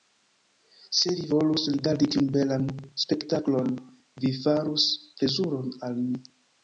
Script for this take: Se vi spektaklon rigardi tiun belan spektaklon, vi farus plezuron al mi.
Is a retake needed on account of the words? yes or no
yes